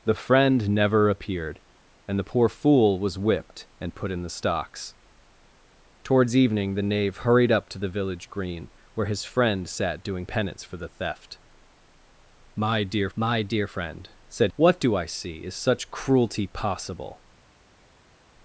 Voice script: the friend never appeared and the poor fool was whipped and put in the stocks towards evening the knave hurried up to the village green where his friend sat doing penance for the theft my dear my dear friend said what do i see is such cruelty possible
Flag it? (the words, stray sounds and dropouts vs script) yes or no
no